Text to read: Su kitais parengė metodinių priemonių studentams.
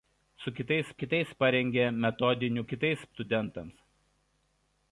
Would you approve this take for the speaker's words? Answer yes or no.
no